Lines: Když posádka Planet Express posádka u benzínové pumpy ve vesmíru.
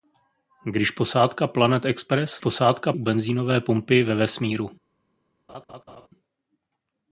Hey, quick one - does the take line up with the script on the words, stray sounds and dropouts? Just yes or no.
no